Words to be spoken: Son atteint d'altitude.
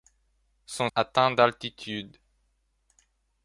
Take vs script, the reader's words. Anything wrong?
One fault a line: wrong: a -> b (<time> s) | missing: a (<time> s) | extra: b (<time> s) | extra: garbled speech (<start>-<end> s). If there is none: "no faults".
no faults